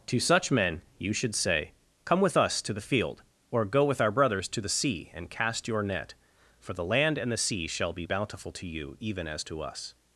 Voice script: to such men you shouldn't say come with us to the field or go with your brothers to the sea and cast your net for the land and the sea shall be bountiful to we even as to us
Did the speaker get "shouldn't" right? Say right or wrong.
wrong